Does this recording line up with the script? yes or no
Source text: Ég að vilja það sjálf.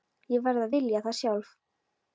no